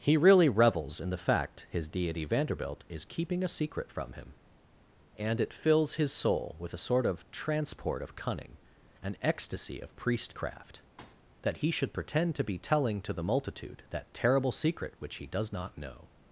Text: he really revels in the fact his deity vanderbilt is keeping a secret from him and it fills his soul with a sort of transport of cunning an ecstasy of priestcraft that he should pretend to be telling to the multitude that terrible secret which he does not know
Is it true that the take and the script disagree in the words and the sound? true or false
true